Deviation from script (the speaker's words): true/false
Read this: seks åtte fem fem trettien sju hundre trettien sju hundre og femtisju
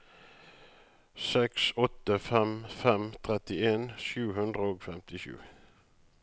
true